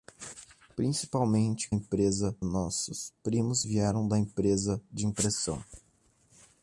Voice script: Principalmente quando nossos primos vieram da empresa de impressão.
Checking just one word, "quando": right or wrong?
wrong